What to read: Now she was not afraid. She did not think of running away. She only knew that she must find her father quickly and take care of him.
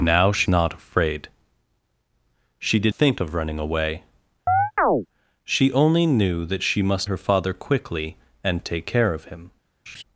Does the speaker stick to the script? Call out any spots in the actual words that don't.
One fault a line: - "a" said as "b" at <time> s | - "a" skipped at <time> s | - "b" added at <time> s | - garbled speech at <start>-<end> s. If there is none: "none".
- "was" skipped at 0.5 s
- "not" skipped at 2.9 s
- "find" skipped at 7.1 s